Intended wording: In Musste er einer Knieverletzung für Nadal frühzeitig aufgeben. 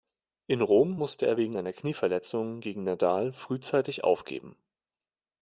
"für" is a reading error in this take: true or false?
true